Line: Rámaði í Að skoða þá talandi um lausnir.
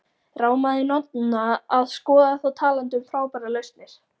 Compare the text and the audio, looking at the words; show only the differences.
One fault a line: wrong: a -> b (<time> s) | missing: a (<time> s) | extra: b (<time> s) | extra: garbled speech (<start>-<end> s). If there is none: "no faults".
extra: Nonna (0.9 s)
extra: frábærar (3.1 s)